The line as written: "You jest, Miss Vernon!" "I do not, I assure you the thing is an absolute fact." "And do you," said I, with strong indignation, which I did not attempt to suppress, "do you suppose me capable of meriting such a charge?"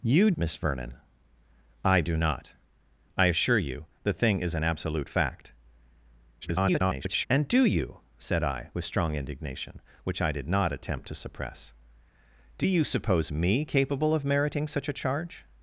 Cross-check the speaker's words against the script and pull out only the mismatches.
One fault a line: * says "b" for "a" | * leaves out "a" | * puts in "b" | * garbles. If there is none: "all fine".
* leaves out "jest"
* garbles